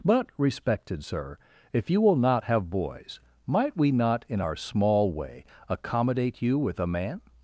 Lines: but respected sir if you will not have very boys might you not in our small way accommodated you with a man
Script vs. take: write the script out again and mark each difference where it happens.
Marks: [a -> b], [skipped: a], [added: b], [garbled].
but respected sir if you will not have [skipped: very] boys might [you -> we] not in our small way [accommodated -> accommodate] you with a man